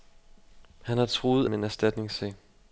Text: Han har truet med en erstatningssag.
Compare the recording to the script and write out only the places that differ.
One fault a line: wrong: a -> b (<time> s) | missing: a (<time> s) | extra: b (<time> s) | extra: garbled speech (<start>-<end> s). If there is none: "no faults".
no faults